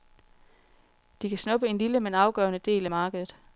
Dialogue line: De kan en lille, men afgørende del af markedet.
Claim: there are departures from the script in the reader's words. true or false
true